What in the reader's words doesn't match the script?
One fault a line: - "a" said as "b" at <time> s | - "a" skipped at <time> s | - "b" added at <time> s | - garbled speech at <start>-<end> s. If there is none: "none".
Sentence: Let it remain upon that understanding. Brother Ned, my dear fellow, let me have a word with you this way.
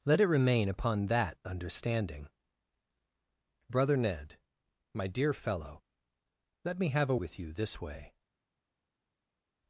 - "word" skipped at 7.2 s